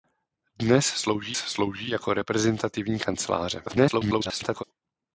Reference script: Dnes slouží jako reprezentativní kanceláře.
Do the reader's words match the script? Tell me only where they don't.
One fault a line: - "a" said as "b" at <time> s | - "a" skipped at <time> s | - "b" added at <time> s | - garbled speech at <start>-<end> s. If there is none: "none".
- "slouží" added at 1.4 s
- garbled speech at 3.7-4.6 s